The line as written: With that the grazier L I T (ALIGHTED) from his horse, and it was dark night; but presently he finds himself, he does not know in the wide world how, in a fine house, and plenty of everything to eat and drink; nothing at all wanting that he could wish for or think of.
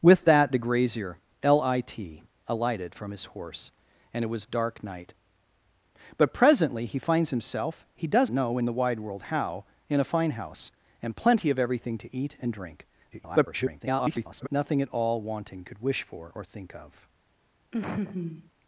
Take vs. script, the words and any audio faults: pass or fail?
fail